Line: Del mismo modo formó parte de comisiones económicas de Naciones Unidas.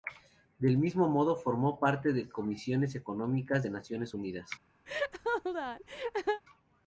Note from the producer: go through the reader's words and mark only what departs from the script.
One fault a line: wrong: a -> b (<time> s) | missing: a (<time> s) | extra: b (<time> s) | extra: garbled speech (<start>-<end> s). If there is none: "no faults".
no faults